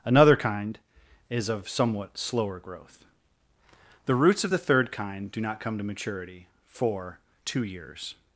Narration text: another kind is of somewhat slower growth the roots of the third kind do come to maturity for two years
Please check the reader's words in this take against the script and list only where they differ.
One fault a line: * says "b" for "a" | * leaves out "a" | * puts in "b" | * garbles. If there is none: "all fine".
* puts in "not"